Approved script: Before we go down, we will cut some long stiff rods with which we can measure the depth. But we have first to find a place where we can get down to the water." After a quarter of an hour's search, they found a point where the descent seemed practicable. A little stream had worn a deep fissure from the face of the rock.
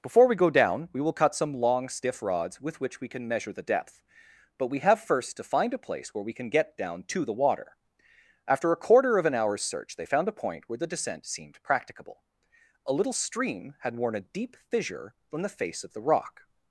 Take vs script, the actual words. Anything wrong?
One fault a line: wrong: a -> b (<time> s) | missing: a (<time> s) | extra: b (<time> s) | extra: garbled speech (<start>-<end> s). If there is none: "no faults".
no faults